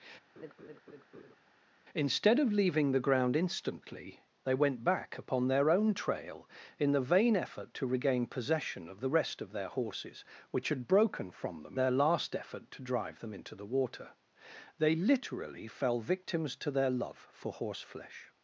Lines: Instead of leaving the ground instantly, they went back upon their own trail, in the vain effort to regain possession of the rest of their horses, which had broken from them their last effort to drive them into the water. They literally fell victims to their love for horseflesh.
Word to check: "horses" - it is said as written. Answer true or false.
true